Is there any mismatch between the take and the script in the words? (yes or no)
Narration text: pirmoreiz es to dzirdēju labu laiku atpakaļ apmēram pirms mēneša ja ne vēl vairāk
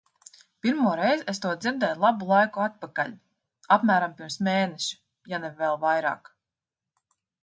no